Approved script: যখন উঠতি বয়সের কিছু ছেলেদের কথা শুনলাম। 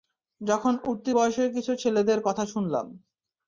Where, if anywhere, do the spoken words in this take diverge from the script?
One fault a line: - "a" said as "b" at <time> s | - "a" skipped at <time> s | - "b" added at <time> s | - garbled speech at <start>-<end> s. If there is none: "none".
none